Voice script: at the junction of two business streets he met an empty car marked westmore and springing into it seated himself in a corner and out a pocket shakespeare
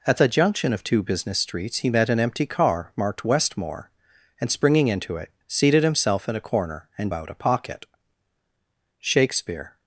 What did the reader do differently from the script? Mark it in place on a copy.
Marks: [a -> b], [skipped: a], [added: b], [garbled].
at the junction of two business streets he met an empty car marked westmore and springing into it seated himself in a corner and out a pocket shakespeare